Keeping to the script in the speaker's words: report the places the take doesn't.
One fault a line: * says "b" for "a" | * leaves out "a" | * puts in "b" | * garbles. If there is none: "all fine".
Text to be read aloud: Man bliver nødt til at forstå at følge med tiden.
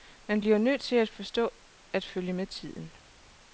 all fine